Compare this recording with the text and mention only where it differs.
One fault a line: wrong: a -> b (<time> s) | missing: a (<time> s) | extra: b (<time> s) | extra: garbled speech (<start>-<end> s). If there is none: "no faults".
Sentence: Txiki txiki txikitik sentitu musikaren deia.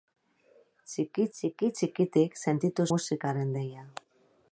no faults